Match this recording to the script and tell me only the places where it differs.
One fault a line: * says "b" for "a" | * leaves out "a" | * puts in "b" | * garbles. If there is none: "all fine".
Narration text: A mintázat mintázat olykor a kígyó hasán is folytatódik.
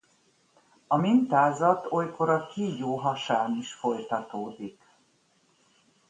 * leaves out "mintázat"